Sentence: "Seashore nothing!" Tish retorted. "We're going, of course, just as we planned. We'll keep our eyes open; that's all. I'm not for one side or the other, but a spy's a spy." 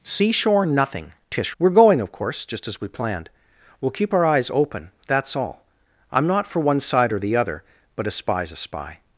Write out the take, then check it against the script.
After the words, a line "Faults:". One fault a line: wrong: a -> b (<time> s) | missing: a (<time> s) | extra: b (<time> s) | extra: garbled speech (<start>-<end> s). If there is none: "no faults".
"Seashore nothing!" Tish. "We're going, of course, just as we planned. We'll keep our eyes open; that's all. I'm not for one side or the other, but a spy's a spy."
Faults:
missing: retorted (1.6 s)